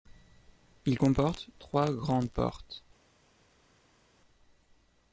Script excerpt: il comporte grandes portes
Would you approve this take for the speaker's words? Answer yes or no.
no